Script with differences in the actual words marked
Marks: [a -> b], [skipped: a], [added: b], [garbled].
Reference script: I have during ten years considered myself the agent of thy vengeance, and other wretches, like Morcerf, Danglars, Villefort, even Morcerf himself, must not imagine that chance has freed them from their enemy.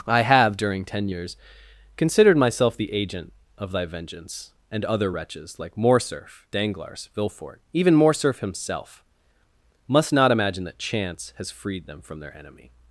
I have during ten years considered myself the agent of thy vengeance, and other wretches, like Morcerf, Danglars, Villefort, even Morcerf himself, must not imagine that chance has freed them from their enemy.